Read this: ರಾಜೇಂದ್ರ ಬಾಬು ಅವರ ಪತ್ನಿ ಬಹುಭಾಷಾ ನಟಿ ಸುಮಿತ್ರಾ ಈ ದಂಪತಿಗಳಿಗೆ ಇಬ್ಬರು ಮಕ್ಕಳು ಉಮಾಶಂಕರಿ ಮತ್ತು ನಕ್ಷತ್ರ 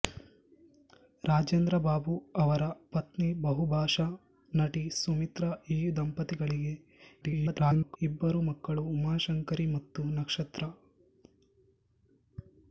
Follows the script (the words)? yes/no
no